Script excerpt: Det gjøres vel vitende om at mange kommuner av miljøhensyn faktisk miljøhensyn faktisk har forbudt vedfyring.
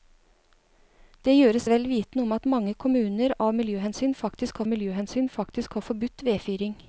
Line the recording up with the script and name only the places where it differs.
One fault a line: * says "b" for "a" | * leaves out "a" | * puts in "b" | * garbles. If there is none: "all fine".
all fine